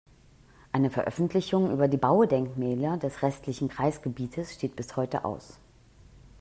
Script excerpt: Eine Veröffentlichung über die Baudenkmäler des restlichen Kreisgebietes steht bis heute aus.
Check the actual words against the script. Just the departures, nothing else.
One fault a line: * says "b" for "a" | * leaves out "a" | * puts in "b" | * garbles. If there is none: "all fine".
all fine